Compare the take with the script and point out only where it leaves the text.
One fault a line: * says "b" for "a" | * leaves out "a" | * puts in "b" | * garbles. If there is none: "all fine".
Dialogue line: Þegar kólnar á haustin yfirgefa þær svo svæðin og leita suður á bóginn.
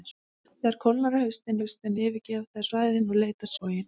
* puts in "haustin"
* leaves out "svo"
* leaves out "suður"